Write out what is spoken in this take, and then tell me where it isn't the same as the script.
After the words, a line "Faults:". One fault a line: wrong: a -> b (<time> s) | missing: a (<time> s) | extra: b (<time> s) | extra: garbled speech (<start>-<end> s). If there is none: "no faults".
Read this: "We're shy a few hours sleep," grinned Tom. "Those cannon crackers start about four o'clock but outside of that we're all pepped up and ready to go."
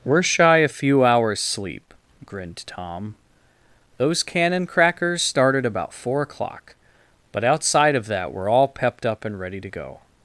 "We're shy a few hours sleep," grinned Tom. "Those cannon crackers started about four o'clock but outside of that we're all pepped up and ready to go."
Faults:
wrong: start -> started (5.2 s)